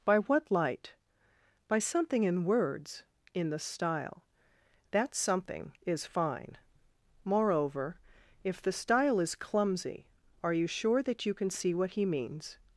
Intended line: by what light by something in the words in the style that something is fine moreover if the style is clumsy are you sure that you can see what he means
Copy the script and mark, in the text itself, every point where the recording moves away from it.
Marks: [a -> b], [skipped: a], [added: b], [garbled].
by what light by something in [skipped: the] words in the style that something is fine moreover if the style is clumsy are you sure that you can see what he means